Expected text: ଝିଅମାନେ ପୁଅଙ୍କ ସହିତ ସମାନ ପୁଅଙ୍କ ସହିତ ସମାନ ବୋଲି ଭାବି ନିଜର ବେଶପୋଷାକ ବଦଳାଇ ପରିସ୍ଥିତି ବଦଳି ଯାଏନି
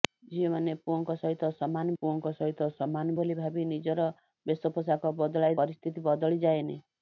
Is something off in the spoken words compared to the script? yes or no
no